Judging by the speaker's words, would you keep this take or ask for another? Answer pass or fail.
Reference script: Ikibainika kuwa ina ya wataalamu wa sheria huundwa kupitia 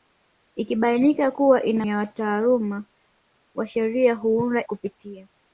pass